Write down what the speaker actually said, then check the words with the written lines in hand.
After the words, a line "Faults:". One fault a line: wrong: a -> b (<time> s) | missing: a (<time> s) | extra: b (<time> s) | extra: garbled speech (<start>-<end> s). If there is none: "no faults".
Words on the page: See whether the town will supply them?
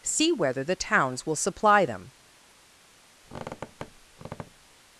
See whether the towns will supply them?
Faults:
wrong: town -> towns (0.8 s)